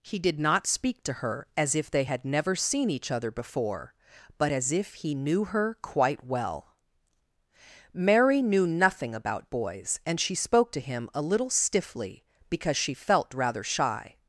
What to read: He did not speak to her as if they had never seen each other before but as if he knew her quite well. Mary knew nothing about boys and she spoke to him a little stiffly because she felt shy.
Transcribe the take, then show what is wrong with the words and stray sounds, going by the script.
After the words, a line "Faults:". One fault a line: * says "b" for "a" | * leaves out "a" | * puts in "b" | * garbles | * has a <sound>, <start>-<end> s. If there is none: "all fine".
He did not speak to her as if they had never seen each other before but as if he knew her quite well. Mary knew nothing about boys and she spoke to him a little stiffly because she felt rather shy.
Faults:
* puts in "rather"